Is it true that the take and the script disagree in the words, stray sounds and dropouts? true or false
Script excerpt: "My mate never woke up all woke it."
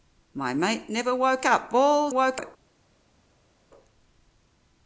false